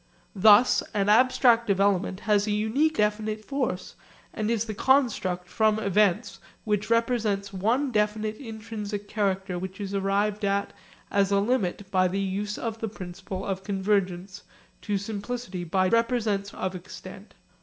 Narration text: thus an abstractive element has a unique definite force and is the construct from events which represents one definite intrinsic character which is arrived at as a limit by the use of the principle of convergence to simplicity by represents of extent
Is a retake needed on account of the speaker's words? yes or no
no